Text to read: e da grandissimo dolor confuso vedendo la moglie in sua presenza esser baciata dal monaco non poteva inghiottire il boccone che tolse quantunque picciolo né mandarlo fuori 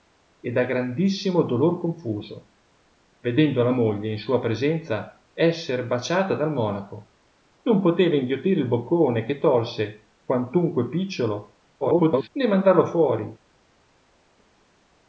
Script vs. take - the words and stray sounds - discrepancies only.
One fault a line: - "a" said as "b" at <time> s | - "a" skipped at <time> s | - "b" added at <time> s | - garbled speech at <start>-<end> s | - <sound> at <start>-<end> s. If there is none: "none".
- garbled speech at 11.8-12.3 s